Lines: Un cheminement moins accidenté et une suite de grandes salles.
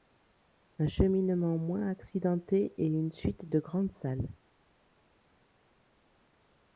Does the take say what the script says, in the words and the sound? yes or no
yes